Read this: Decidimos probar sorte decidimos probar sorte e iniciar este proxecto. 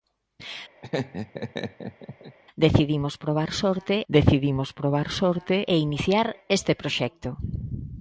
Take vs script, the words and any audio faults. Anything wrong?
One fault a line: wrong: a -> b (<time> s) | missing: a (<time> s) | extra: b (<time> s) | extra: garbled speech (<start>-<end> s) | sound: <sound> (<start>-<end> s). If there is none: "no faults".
sound: laugh (0.8-2.4 s)